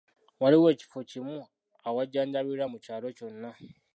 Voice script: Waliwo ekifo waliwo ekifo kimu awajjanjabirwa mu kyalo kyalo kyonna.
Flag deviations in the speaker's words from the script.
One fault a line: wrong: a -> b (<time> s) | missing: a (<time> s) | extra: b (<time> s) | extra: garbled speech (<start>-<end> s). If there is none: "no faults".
missing: waliwo ekifo (1.0 s)
missing: kyalo (3.1 s)